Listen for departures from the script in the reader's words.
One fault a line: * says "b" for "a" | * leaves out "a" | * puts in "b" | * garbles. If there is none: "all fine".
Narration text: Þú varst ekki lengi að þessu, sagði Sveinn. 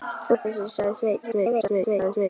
* leaves out "varst ekki lengi"
* garbles